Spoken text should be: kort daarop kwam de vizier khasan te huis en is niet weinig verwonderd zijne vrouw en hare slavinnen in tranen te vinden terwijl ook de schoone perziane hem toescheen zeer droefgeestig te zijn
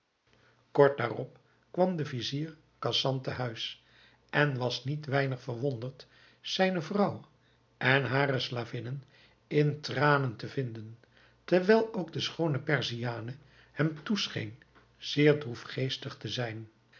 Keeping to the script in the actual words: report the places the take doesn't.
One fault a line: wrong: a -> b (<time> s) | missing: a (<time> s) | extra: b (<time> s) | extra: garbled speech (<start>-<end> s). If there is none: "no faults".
wrong: is -> was (4.6 s)